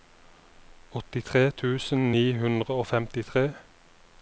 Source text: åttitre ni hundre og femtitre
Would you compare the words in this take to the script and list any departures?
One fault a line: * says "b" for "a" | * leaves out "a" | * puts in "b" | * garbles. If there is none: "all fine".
* puts in "tusen"